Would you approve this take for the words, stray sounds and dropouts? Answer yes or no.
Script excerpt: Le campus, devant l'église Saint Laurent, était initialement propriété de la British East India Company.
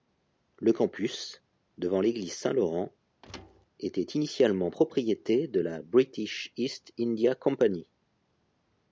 no